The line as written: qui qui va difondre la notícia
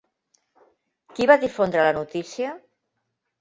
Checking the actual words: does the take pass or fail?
fail